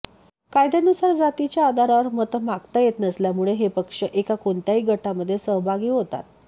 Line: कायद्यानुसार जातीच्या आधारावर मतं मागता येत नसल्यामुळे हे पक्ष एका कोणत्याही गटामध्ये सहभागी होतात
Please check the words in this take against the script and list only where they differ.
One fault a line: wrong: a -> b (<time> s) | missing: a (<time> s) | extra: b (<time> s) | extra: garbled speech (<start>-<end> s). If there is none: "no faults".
no faults